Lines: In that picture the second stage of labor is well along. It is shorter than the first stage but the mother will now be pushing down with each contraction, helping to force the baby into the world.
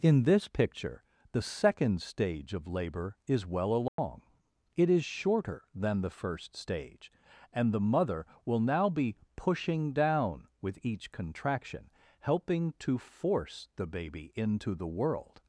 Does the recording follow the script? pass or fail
fail